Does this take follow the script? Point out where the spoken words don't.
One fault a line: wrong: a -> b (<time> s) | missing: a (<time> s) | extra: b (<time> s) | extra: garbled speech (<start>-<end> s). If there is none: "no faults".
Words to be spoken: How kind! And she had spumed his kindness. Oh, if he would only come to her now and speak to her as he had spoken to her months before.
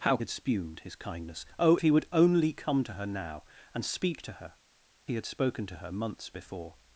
missing: kind And she (0.2 s)
missing: if (1.8 s)
missing: as (4.5 s)